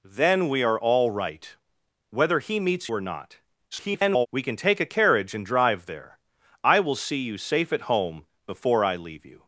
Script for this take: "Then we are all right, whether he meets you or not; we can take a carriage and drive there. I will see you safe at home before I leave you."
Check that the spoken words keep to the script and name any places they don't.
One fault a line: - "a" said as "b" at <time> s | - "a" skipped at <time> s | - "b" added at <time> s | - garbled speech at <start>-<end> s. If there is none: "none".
- "you" skipped at 2.9 s
- garbled speech at 3.7-4.3 s